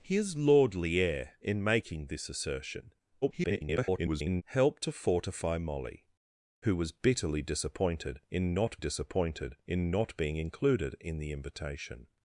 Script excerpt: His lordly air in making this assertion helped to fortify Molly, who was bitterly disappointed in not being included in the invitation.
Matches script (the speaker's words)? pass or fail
fail